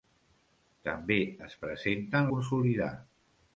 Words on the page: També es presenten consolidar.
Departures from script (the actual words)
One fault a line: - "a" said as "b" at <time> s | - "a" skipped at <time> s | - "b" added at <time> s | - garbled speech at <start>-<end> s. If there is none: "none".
none